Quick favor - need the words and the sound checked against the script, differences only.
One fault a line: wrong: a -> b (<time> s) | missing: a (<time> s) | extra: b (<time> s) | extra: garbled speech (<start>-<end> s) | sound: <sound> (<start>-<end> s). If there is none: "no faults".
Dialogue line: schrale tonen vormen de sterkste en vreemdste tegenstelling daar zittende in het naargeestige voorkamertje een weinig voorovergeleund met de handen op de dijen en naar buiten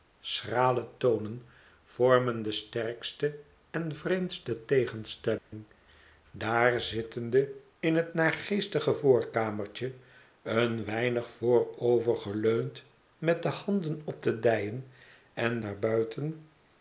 sound: dropout (5.4-5.5 s)